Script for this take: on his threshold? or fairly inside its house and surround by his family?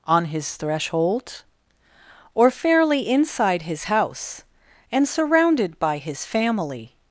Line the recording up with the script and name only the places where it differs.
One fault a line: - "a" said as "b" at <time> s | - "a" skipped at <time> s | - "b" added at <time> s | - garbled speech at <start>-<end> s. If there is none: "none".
- "its" said as "his" at 3.6 s
- "surround" said as "surrounded" at 5.1 s